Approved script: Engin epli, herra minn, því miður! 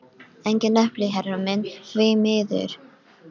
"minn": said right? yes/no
yes